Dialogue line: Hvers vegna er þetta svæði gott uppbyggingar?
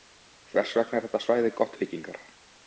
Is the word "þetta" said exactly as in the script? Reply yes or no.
yes